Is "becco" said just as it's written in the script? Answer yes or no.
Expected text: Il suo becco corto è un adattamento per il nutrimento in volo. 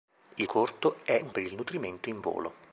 no